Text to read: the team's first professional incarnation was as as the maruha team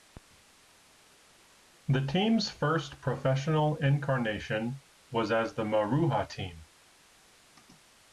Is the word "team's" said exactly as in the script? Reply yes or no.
yes